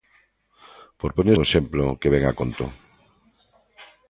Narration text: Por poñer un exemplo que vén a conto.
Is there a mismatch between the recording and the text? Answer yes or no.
no